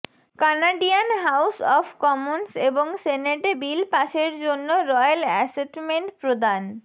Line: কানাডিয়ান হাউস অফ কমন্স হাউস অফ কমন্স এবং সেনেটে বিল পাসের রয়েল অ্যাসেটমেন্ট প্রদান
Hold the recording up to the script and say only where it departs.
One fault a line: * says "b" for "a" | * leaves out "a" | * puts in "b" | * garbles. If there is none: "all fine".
* leaves out "হাউস অফ কমন্স"
* puts in "জন্য"